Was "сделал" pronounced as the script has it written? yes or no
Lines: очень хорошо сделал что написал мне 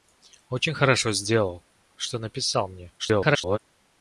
yes